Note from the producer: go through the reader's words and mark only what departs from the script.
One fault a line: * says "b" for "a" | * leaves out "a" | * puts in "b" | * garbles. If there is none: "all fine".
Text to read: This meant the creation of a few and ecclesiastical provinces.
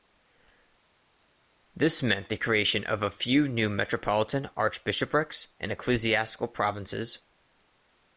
* puts in "new Metropolitan archbishoprics"